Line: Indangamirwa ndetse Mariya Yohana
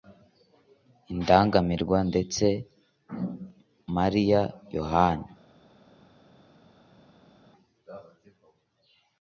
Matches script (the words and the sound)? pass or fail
pass